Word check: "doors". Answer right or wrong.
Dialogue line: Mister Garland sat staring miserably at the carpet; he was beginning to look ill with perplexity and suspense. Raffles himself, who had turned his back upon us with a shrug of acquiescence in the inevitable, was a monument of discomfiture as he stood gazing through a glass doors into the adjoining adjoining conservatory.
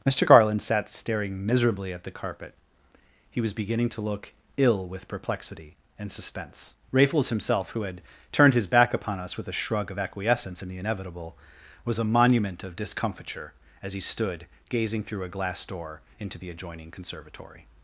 wrong